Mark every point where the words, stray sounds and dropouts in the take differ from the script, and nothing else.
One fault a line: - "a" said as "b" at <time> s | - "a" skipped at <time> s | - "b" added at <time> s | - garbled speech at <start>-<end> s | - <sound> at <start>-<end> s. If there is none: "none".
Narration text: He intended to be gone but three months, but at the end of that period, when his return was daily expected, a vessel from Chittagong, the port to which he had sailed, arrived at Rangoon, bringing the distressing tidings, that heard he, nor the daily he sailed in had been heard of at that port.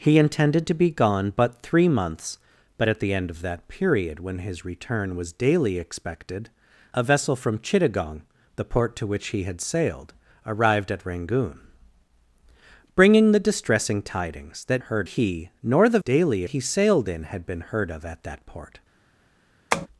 - tap at 19.7-19.9 s